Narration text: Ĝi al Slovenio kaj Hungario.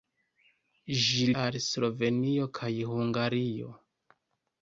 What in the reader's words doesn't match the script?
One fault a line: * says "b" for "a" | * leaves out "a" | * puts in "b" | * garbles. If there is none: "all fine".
all fine